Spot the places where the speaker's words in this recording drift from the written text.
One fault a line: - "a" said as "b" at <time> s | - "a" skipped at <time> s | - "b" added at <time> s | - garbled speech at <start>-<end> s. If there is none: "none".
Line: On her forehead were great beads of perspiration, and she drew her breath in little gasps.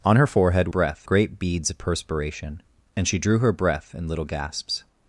- "were" said as "breath" at 0.7 s